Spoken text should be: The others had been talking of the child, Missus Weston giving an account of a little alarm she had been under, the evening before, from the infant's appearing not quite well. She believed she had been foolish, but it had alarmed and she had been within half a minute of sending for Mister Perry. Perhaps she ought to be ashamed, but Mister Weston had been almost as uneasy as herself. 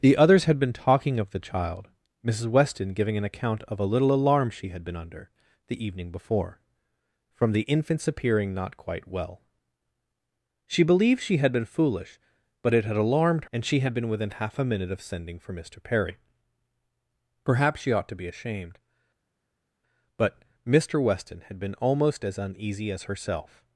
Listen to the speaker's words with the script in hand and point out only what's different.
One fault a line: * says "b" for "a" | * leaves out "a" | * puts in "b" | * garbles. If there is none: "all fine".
all fine